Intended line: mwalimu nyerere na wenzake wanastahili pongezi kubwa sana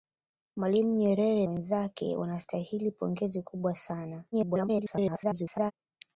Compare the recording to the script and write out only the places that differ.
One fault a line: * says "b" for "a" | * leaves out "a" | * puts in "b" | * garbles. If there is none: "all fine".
* leaves out "na"
* garbles